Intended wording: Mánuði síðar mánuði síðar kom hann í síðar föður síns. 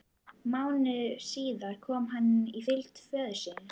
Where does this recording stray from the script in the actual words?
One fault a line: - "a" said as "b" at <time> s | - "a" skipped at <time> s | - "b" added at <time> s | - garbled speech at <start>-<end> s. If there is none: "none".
- "mánuði síðar" skipped at 1.8 s
- "síðar" said as "fylgd" at 2.7 s